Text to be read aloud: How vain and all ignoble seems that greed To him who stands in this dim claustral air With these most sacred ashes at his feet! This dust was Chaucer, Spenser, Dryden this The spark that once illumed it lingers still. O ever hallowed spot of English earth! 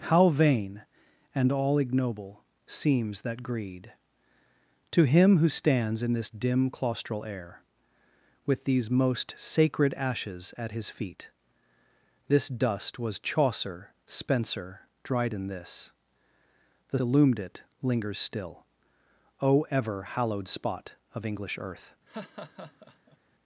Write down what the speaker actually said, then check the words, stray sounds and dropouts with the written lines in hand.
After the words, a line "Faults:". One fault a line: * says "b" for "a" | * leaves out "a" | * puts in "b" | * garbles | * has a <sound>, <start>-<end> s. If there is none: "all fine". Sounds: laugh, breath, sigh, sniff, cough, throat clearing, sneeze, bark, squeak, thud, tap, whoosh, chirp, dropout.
How vain and all ignoble seems that greed To him who stands in this dim claustral air With these most sacred ashes at his feet! This dust was Chaucer, Spenser, Dryden this The illumed it lingers still. O ever hallowed spot of English earth!
Faults:
* leaves out "spark that once"
* has a laugh, 22.1-23.2 s